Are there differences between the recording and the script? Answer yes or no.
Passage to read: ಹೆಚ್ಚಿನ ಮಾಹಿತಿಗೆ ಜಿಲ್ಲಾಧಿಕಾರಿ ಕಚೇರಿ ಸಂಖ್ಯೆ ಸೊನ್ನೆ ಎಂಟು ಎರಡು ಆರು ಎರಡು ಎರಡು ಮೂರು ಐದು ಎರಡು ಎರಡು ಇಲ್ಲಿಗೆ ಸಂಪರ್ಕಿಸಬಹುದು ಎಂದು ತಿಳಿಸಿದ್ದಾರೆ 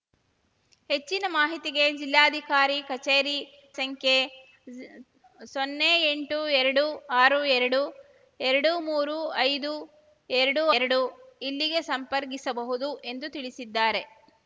no